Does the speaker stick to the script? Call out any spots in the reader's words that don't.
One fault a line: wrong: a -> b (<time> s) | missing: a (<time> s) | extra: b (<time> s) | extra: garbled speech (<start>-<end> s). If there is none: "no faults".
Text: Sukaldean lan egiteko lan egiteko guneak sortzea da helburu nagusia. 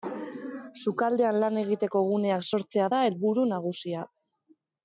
missing: lan egiteko (2.0 s)